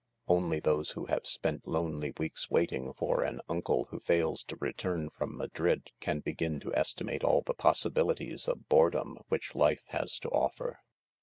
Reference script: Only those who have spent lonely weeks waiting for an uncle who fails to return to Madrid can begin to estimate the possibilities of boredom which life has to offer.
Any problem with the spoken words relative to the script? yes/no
yes